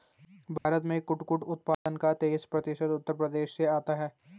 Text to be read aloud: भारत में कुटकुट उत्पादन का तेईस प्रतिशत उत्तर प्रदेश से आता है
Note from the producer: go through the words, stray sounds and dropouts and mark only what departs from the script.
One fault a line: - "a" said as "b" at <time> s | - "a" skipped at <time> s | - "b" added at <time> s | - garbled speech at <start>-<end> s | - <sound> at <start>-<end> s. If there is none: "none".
- dropout at 0.6-0.7 s
- dropout at 1.7-1.9 s